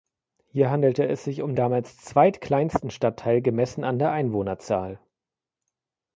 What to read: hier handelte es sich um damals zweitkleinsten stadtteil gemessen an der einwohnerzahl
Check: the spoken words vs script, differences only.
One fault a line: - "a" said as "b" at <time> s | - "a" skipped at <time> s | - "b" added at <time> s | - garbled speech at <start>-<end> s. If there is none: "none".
none